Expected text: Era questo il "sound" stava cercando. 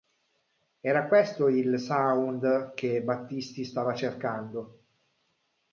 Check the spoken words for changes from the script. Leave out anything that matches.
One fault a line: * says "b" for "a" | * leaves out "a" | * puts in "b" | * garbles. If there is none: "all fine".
* puts in "che Battisti"